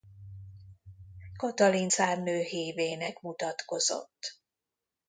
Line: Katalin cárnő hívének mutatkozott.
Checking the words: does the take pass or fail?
pass